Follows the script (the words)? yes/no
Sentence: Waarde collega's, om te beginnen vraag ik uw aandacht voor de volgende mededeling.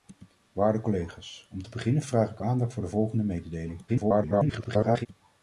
no